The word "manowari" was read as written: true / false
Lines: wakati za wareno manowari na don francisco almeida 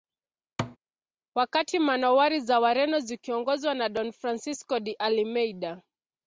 false